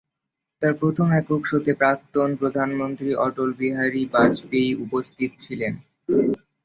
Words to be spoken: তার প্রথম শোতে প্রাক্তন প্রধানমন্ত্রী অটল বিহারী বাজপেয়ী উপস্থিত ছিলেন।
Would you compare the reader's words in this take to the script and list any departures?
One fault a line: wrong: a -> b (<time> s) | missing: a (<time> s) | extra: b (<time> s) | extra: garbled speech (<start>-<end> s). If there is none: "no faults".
extra: একক (1.2 s)